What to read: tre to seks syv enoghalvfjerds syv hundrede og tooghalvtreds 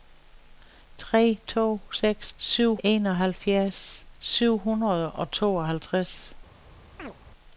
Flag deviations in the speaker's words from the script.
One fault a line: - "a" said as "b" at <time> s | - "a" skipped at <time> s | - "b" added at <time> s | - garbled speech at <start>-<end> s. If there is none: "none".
none